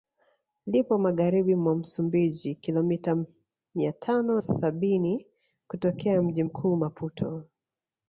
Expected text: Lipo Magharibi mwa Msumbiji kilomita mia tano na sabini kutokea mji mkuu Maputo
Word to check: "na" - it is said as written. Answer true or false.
false